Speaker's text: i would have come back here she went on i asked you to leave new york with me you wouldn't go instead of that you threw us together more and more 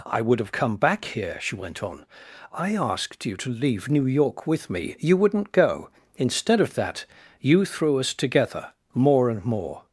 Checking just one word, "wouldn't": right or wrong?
right